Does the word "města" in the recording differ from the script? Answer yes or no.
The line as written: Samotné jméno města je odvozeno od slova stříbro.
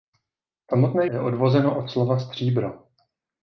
yes